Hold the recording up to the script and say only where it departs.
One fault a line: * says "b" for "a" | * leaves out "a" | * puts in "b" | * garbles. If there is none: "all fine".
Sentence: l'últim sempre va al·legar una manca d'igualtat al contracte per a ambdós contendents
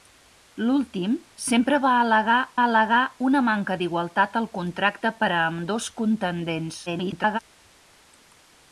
* puts in "al·legar"
* garbles